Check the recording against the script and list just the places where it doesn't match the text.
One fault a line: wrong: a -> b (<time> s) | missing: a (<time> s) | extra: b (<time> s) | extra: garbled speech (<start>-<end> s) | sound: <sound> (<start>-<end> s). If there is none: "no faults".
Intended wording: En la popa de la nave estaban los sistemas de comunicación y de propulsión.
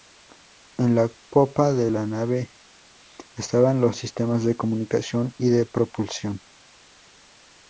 no faults